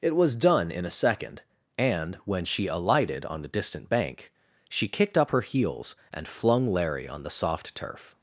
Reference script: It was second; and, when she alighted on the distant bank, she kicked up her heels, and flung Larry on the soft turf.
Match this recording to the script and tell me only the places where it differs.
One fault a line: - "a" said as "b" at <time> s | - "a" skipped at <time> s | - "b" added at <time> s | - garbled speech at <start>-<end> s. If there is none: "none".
- "done in a" added at 0.3 s